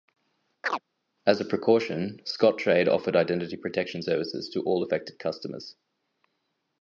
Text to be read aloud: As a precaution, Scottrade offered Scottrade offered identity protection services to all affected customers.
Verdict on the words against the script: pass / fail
fail